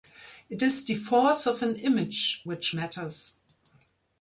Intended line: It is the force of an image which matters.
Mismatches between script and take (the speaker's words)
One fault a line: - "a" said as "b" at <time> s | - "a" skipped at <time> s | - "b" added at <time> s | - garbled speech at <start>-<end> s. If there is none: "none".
none